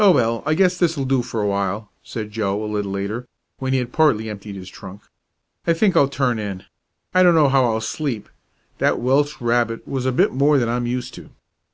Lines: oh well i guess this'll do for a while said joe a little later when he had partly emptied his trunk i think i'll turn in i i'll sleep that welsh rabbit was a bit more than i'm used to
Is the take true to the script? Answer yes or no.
no